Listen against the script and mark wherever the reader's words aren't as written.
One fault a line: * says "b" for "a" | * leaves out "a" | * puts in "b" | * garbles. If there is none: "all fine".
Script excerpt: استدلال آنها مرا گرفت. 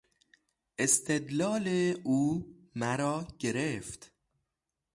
* says "او" for "آنها"